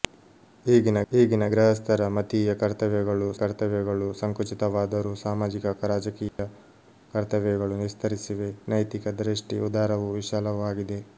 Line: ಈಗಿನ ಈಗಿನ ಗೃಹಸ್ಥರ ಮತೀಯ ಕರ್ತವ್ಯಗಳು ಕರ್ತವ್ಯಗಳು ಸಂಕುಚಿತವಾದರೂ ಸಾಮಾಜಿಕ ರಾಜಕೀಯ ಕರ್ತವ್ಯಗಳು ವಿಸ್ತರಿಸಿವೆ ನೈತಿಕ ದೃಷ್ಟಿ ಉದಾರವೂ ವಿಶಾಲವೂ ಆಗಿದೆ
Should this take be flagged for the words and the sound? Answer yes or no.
yes